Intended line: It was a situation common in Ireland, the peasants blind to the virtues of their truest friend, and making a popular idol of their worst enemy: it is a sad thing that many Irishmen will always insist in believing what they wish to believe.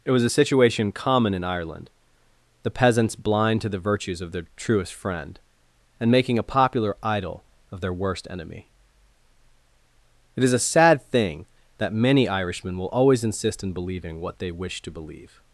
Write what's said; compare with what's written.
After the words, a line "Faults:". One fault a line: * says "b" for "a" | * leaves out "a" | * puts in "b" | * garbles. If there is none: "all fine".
It was a situation common in Ireland, the peasants blind to the virtues of their truest friend, and making a popular idol of their worst enemy: it is a sad thing that many Irishmen will always insist in believing what they wish to believe.
Faults:
all fine